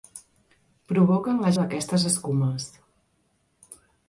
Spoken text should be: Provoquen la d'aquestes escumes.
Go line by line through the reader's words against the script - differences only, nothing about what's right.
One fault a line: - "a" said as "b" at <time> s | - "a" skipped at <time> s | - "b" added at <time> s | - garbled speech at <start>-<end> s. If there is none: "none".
none